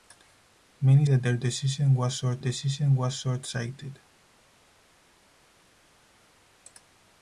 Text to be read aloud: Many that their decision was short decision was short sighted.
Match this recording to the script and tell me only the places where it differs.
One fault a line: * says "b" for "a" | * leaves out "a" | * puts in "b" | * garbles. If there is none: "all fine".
all fine